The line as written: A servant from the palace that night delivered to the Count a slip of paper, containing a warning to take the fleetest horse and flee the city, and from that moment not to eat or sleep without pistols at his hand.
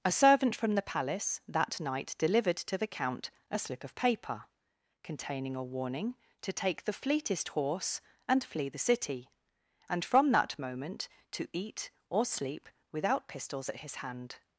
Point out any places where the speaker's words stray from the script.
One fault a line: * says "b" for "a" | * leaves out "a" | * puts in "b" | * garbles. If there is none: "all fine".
* leaves out "not"